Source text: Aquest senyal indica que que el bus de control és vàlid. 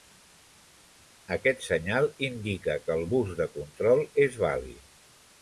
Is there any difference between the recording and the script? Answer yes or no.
yes